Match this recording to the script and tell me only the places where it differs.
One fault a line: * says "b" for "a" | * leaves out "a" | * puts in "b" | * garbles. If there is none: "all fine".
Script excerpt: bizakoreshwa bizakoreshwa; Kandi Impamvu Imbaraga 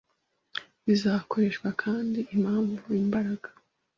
* leaves out "bizakoreshwa"